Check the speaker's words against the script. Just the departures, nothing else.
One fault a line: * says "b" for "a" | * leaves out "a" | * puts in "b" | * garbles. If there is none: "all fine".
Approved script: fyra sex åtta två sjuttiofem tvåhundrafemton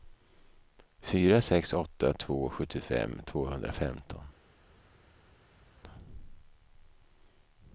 all fine